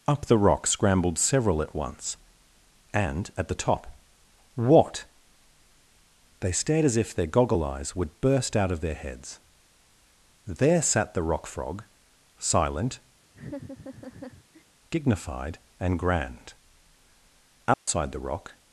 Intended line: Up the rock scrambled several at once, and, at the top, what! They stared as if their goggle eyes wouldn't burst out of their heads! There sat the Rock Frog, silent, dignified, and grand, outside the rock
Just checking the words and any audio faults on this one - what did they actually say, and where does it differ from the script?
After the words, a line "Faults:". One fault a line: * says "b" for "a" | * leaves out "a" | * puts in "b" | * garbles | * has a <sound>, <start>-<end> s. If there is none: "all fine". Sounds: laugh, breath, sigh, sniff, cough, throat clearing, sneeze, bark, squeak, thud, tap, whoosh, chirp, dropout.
Up the rock scrambled several at once, and, at the top, what! They stared as if their goggle eyes would burst out of their heads! There sat the Rock Frog, silent, dignified, and grand, outside the rock
Faults:
* says "would" for "wouldn't"
* has a laugh, 13.3-14.6 s
* has a dropout, 17.7-17.9 s